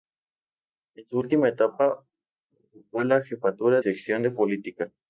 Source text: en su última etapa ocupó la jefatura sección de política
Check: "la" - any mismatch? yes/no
no